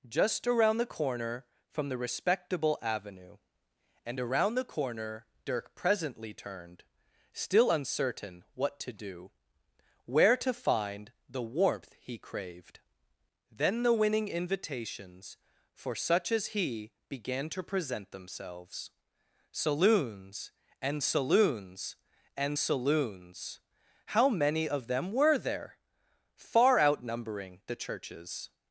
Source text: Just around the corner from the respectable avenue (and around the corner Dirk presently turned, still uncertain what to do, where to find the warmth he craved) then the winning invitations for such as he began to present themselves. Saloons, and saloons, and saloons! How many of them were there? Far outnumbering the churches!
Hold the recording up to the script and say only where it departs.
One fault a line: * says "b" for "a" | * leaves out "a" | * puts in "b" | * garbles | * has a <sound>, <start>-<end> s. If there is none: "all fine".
all fine